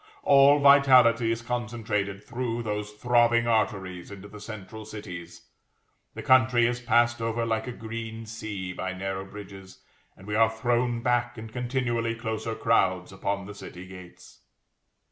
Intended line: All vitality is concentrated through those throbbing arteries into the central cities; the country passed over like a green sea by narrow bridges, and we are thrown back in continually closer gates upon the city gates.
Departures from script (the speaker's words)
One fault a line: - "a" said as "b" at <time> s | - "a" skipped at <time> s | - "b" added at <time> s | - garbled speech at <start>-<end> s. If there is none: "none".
- "is" added at 6.7 s
- "gates" said as "crowds" at 12.5 s